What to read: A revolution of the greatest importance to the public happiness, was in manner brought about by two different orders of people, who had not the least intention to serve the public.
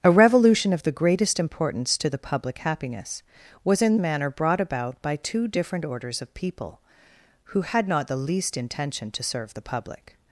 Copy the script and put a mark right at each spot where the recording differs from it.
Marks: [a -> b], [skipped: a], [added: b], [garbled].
A revolution of the greatest importance to the public happiness, was in manner brought about by two different orders of people, who had not the least intention to serve the public.